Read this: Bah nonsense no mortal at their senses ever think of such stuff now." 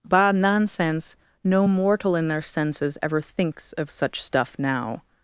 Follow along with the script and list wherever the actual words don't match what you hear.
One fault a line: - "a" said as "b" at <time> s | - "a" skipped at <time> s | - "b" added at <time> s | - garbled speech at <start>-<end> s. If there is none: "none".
- "at" said as "in" at 2.2 s
- "think" said as "thinks" at 3.2 s